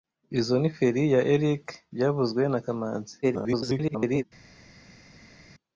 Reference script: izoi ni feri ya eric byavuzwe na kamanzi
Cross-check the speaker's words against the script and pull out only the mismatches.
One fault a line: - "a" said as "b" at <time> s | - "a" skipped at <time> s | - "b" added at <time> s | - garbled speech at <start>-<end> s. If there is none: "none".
- garbled speech at 3.2-4.2 s